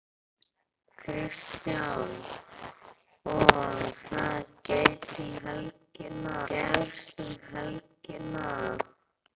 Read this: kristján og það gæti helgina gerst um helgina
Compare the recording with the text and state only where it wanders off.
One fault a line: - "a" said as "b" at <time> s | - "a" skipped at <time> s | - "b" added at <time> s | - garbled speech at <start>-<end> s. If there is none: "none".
none